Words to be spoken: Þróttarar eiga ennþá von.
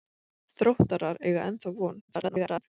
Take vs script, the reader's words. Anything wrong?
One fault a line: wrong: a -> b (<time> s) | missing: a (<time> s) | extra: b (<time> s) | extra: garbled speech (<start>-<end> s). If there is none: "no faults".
extra: garbled speech (2.1-2.6 s)